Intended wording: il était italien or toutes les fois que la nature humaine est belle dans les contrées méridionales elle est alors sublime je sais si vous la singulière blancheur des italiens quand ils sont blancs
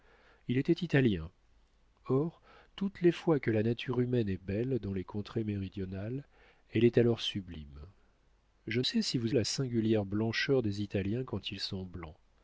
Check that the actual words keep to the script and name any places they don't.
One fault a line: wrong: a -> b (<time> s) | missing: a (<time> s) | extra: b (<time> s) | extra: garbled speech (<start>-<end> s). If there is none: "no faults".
no faults